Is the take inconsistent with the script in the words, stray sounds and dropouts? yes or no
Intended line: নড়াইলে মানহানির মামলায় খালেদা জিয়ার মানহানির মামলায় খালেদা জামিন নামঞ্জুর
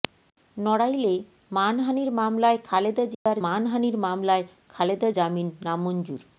yes